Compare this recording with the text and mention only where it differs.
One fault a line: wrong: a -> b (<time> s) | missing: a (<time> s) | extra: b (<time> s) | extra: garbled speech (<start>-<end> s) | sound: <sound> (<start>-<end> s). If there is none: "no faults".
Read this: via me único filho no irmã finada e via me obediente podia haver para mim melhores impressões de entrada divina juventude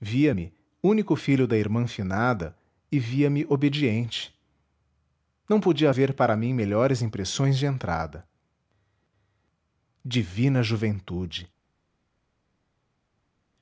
wrong: no -> da (1.5 s)
extra: não (5.5 s)